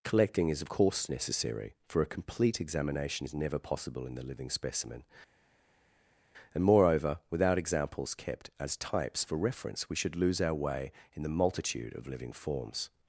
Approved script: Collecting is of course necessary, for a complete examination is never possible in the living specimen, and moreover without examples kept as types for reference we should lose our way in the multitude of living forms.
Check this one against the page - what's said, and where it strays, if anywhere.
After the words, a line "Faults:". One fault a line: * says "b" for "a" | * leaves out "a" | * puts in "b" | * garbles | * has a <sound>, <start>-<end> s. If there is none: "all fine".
Collecting is of course necessary, for a complete examination is never possible in the living specimen, and moreover without examples kept as types for reference we should lose our way in the multitude of living forms.
Faults:
all fine